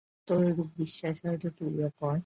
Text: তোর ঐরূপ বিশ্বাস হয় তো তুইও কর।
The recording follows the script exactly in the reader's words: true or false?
true